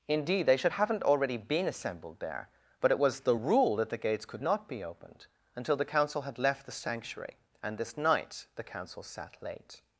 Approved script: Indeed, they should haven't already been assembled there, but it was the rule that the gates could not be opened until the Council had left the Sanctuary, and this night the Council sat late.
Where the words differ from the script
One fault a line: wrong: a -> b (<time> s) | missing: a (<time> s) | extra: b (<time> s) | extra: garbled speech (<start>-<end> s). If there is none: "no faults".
no faults